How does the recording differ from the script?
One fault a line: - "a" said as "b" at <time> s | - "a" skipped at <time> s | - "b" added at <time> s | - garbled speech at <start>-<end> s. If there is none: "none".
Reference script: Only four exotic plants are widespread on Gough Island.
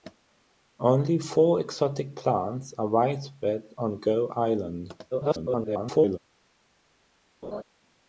- garbled speech at 5.1-6.2 s